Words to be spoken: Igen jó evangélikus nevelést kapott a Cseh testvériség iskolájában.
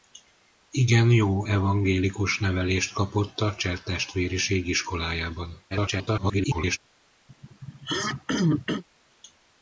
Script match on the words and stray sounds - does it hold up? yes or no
no